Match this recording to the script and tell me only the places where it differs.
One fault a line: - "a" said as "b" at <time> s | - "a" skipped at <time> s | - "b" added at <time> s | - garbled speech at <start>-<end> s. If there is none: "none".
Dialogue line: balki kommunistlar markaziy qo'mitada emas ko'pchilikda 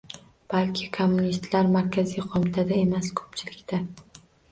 none